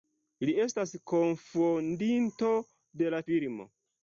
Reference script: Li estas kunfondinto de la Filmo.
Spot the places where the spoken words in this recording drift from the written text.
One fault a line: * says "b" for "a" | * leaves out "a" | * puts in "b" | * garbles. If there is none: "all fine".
all fine